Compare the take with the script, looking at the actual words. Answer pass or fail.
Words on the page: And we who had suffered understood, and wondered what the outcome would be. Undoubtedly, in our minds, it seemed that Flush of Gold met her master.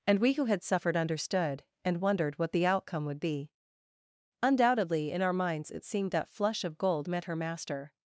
pass